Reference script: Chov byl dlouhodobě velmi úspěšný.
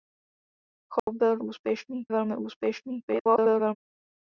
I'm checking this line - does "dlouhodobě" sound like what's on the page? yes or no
no